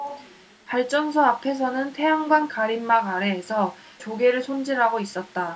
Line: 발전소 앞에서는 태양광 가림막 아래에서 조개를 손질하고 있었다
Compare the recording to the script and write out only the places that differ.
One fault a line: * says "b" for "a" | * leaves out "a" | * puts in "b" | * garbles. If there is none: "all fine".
all fine